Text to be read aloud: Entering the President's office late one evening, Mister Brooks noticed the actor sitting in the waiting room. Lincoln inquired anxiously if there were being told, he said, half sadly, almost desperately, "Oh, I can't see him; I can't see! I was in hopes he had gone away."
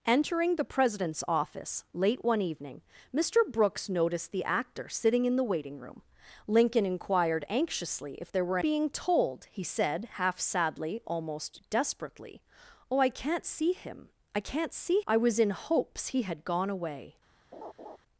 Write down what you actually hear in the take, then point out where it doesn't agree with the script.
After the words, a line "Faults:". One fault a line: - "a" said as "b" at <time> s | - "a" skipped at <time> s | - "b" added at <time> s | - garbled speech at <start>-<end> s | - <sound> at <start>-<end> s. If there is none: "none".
Entering the President's office late one evening, Mister Brooks noticed the actor sitting in the waiting room. Lincoln inquired anxiously if there were being told, he said, half sadly, almost desperately, "Oh, I can't see him; I can't see! I was in hopes he had gone away."
Faults:
- laugh at 17.5-18.0 s